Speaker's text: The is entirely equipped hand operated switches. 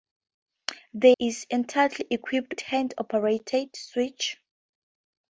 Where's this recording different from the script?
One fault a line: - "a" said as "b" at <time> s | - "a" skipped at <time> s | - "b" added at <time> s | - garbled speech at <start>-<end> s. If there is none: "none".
none